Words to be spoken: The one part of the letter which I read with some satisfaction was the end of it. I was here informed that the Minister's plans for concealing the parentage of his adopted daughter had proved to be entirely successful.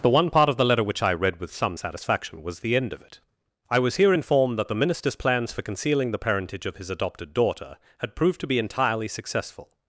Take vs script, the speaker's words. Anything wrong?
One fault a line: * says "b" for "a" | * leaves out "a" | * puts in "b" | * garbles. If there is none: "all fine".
all fine